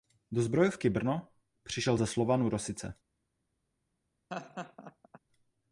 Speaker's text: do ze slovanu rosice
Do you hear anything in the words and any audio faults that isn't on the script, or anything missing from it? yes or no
yes